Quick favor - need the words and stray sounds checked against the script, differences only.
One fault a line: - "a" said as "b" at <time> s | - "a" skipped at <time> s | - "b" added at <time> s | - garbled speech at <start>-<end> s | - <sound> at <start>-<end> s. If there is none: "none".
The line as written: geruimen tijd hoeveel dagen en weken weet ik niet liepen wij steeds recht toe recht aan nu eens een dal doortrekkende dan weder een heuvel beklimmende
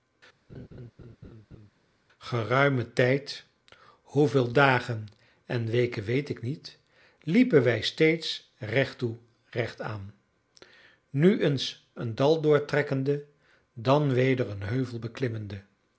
- laugh at 0.5-1.7 s